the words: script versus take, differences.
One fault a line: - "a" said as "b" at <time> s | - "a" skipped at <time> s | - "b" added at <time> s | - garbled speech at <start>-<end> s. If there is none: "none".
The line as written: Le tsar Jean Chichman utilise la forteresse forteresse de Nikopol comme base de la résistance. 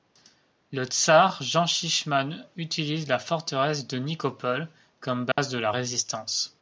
- "forteresse" skipped at 3.9 s